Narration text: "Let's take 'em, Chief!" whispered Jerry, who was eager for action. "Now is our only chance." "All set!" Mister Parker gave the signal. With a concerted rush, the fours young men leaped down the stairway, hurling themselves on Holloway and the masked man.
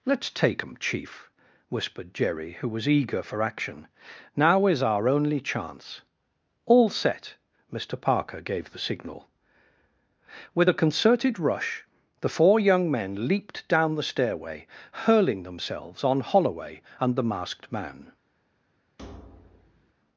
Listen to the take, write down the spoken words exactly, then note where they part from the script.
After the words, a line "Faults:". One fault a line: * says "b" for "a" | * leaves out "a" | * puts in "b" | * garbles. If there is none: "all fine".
"Let's take 'em, Chief!" whispered Jerry, who was eager for action. "Now is our only chance." "All set!" Mister Parker gave the signal. With a concerted rush, the four young men leaped down the stairway, hurling themselves on Holloway and the masked man.
Faults:
* says "four" for "fours"